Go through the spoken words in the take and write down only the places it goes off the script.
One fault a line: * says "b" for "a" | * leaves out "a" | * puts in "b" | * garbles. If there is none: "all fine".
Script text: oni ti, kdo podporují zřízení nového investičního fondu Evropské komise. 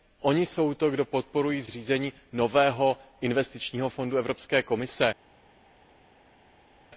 * puts in "jsou"